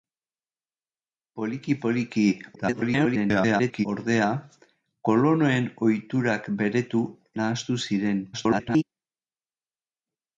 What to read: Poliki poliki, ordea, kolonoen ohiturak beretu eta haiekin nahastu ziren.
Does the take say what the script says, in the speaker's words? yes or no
no